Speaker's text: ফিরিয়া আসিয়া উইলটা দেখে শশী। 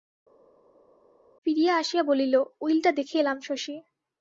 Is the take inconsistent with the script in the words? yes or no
yes